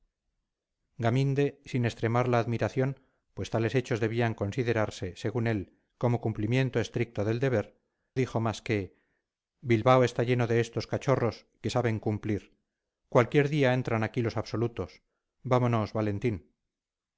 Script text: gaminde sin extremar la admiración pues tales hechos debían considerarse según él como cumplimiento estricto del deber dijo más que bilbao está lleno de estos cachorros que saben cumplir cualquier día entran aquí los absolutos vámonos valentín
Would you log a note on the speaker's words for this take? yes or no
no